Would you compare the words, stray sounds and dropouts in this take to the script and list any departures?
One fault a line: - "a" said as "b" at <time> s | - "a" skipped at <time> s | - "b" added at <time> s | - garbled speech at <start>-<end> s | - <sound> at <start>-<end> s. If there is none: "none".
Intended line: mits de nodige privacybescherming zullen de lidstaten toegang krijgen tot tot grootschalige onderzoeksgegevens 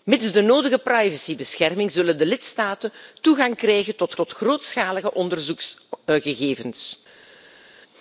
none